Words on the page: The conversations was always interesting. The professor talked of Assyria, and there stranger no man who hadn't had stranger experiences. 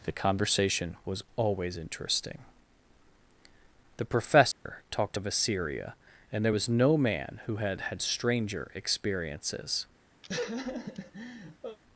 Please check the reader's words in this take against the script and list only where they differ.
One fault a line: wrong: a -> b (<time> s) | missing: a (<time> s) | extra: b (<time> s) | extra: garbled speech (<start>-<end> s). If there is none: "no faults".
wrong: conversations -> conversation (0.1 s)
wrong: stranger -> was (6.5 s)
wrong: hadn't -> had (7.6 s)